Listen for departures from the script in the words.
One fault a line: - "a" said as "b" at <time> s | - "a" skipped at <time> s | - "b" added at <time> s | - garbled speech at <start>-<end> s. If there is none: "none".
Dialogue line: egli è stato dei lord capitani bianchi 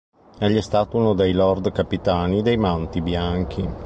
- "uno" added at 1.0 s
- "dei manti" added at 2.4 s